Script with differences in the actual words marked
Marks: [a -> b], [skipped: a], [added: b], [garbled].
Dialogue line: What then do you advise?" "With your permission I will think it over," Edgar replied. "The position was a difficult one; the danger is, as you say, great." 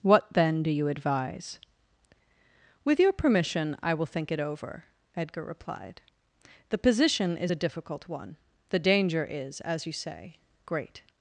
What then do you advise?" "With your permission I will think it over," Edgar replied. "The position [was -> is] a difficult one; the danger is, as you say, great."